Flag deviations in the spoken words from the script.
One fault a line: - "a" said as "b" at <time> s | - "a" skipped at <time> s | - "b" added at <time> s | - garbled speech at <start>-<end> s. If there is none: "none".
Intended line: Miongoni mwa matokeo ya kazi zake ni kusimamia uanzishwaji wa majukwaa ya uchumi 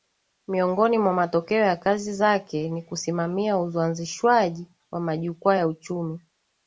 none